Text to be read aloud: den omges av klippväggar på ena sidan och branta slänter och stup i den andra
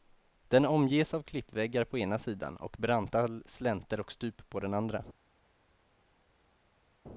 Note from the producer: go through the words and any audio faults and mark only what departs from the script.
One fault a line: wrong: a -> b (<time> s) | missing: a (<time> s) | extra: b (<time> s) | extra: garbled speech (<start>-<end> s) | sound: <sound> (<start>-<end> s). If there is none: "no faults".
wrong: i -> på (4.5 s)